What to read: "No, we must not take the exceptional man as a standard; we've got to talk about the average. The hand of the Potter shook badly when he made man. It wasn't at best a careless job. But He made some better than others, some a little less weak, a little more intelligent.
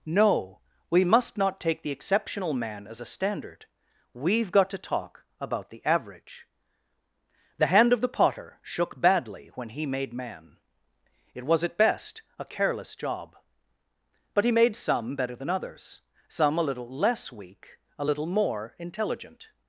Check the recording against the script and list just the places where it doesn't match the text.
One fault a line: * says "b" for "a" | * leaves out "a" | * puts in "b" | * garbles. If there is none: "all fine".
* says "was" for "wasn't"